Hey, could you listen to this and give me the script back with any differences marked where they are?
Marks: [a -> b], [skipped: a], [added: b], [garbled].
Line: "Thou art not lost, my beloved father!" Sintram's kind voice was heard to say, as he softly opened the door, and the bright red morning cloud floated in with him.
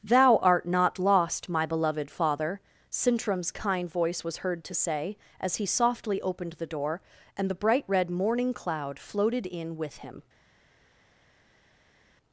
"Thou art not lost, my beloved father!" Sintram's kind voice was heard to say, as he softly opened the door, and the bright red morning cloud floated in with him.